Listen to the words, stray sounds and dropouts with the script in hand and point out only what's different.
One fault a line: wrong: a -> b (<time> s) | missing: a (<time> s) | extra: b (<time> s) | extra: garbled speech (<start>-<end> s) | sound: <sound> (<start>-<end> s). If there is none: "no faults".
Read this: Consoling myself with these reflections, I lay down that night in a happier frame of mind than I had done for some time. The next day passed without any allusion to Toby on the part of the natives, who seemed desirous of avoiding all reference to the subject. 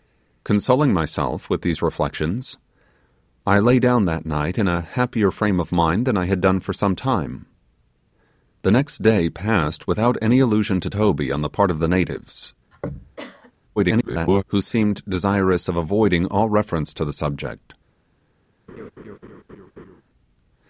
sound: throat clearing (12.7-13.5 s)
extra: garbled speech (13.8-14.4 s)
sound: laugh (18.7-20.0 s)